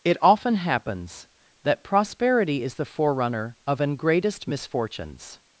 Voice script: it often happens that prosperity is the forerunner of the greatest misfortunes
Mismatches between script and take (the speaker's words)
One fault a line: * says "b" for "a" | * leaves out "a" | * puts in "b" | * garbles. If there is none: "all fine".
* says "an" for "the"